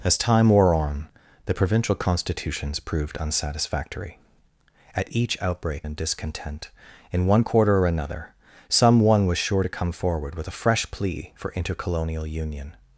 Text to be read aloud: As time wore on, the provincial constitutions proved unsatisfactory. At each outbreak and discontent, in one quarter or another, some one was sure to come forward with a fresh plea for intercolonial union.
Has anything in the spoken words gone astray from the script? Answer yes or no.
no